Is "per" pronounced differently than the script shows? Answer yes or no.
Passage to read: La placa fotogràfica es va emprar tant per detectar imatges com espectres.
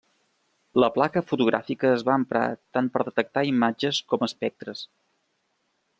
no